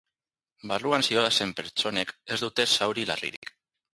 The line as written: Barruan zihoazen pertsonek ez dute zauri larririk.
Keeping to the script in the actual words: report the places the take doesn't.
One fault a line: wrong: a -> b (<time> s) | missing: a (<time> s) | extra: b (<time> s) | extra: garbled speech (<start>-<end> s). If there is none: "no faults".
no faults